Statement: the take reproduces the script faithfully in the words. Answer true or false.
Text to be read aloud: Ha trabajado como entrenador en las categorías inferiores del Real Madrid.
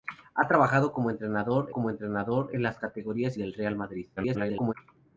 false